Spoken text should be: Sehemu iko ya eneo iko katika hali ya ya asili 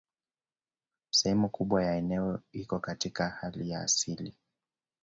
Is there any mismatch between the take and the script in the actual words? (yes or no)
yes